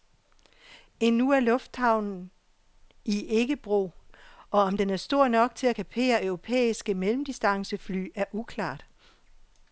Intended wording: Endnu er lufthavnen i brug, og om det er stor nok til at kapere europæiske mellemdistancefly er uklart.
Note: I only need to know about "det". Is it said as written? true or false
false